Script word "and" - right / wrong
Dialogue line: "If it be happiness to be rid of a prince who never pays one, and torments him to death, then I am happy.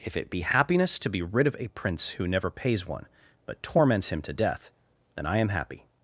wrong